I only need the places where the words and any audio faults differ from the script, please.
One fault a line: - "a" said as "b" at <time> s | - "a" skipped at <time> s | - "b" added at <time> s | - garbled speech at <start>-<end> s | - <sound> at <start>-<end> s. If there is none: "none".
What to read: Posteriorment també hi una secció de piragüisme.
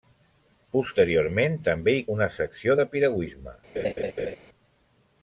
- laugh at 3.8-4.4 s